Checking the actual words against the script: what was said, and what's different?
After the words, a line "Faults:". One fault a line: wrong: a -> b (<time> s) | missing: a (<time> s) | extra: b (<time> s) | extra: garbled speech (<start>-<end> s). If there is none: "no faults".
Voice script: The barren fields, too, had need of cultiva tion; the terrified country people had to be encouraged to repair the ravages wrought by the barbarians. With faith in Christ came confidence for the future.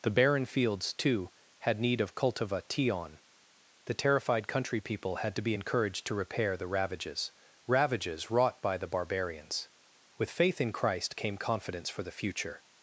The barren fields, too, had need of cultiva tion; the terrified country people had to be encouraged to repair the ravages ravages wrought by the barbarians. With faith in Christ came confidence for the future.
Faults:
extra: ravages (7.7 s)